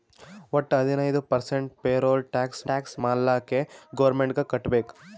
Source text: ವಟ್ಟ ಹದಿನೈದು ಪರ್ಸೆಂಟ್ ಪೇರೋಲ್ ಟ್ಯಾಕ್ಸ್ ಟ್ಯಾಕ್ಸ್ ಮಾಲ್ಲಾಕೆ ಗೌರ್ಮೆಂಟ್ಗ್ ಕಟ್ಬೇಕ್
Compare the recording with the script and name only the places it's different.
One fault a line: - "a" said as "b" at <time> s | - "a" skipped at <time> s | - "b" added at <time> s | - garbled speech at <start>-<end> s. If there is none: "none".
none